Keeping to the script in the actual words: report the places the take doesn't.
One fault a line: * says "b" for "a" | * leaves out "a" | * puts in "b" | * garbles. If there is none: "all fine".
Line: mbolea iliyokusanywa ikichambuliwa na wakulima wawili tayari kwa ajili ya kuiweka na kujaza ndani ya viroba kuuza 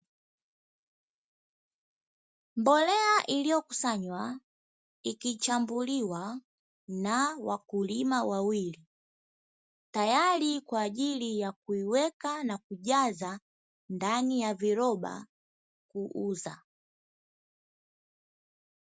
all fine